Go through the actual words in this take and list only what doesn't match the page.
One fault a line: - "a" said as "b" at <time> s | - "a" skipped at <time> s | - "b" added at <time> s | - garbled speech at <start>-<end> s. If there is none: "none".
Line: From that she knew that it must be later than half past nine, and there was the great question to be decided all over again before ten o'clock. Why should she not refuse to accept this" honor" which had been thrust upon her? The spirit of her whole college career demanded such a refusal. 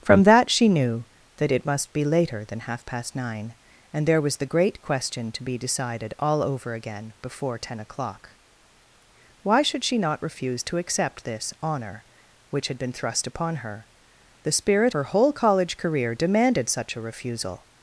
- "of" skipped at 14.9 s